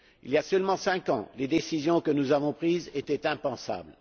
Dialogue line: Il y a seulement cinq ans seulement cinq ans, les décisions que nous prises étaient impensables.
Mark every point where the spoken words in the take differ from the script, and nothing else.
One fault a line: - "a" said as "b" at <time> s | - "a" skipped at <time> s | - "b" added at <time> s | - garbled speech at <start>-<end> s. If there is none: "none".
- "seulement cinq ans" skipped at 1.3 s
- "avons" added at 2.3 s